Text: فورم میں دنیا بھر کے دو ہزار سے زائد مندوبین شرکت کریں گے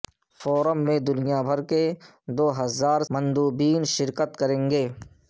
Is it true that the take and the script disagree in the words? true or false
true